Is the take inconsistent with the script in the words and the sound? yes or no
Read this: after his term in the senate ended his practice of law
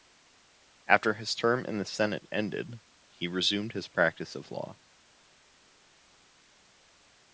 yes